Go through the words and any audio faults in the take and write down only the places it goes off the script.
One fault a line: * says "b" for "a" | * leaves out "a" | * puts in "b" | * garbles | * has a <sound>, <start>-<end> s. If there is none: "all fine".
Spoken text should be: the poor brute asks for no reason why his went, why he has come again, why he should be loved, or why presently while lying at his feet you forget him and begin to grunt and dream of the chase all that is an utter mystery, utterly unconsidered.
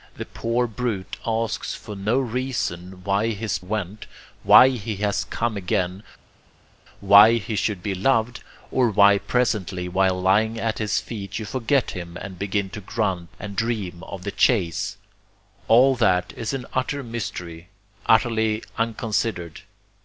all fine